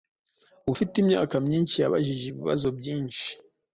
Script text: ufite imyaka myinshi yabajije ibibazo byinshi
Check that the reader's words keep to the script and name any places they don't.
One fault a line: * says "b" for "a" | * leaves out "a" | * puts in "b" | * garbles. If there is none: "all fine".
all fine